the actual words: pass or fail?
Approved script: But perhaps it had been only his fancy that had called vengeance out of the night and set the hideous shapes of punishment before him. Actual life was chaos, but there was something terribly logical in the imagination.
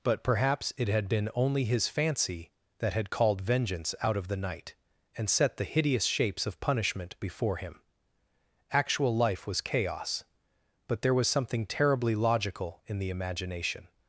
pass